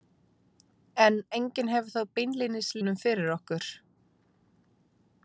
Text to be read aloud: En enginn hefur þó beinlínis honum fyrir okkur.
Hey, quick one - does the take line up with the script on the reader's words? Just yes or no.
yes